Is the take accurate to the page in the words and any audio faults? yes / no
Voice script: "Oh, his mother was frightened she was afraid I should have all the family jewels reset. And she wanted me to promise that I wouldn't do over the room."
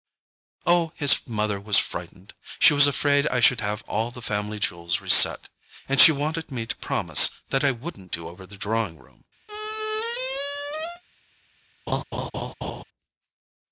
no